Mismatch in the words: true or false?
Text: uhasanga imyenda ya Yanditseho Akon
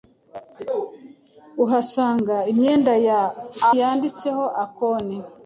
false